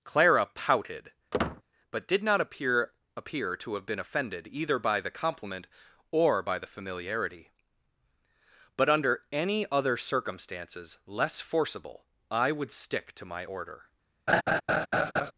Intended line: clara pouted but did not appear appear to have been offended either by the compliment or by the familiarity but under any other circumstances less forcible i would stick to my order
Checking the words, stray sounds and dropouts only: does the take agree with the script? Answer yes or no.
no